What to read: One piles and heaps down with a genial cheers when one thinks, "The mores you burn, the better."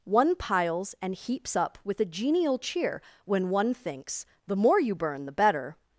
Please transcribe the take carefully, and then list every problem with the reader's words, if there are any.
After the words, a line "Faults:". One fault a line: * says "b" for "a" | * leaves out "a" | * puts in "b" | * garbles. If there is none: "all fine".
One piles and heaps up with a genial cheer when one thinks, "The more you burn, the better."
Faults:
* says "up" for "down"
* says "cheer" for "cheers"
* says "more" for "mores"